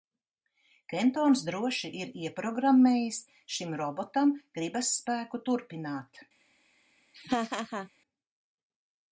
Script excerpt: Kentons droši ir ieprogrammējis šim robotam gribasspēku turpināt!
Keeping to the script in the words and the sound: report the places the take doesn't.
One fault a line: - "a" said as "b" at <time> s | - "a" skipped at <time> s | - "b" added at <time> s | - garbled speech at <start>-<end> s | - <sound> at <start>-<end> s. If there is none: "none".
- laugh at 7.1-7.9 s